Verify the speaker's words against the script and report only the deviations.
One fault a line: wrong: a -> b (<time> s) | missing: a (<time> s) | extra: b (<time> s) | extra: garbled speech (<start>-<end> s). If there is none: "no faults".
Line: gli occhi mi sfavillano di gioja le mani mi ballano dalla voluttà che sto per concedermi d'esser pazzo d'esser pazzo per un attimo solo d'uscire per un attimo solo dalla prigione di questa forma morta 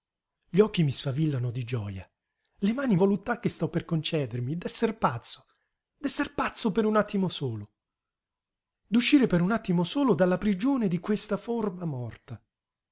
missing: mi ballano dalla (3.0 s)